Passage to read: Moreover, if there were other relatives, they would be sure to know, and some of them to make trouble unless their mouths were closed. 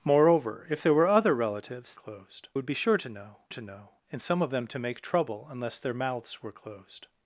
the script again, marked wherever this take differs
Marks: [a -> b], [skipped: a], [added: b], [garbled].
Moreover, if there were other relatives, [they -> closed] would be sure to know, [added: to know] and some of them to make trouble unless their mouths were closed.